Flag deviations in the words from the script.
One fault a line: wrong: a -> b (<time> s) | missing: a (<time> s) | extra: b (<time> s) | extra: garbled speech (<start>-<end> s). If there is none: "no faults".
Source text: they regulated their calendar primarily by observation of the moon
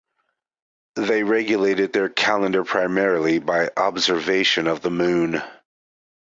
no faults